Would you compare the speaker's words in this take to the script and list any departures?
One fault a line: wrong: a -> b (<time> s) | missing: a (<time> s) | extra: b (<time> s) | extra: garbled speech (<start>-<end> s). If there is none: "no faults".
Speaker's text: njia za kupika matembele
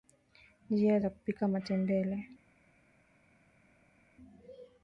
no faults